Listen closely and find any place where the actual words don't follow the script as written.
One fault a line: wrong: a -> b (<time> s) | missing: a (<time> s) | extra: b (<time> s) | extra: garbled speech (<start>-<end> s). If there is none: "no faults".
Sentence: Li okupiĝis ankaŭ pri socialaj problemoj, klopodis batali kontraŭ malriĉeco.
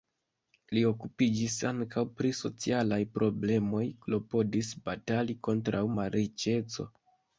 no faults